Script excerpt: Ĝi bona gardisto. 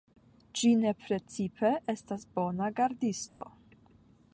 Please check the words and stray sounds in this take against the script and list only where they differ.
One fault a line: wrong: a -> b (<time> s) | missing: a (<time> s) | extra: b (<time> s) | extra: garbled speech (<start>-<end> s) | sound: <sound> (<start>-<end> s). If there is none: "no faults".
extra: ne precipe estas (0.8 s)
sound: dropout (3.3-3.4 s)